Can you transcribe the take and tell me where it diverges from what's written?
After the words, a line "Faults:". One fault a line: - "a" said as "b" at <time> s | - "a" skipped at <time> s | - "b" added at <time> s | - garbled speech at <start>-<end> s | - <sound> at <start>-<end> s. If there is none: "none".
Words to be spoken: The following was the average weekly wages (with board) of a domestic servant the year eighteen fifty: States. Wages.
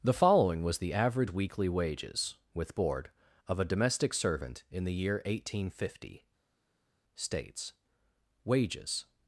The following was the average weekly wages (with board) of a domestic servant in the year eighteen fifty: States. Wages.
Faults:
- "in" added at 4.7 s